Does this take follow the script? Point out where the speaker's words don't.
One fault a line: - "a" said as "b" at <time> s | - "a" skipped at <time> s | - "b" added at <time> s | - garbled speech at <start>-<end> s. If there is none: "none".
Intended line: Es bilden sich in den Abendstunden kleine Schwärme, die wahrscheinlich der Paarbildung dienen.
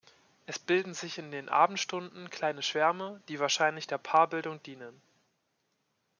none